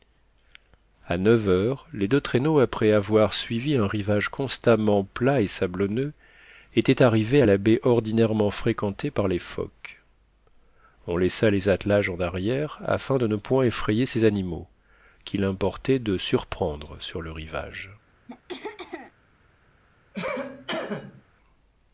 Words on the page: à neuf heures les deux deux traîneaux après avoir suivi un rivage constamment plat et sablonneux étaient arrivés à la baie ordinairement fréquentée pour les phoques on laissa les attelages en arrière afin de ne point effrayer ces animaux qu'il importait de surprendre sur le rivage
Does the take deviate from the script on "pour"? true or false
true